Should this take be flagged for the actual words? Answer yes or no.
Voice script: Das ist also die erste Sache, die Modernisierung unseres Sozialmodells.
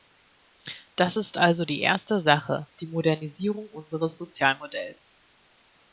no